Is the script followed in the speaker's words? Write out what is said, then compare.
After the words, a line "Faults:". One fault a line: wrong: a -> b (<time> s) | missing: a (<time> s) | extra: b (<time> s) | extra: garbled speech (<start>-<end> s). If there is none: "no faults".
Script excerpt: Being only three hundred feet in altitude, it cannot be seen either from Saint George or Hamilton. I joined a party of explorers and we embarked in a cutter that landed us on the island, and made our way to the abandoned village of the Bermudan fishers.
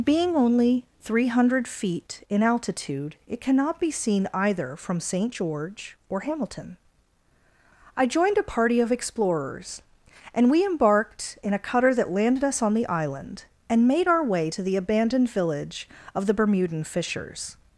Being only three hundred feet in altitude, it cannot be seen either from Saint George or Hamilton. I joined a party of explorers and we embarked in a cutter that landed us on the island, and made our way to the abandoned village of the Bermudan fishers.
Faults:
no faults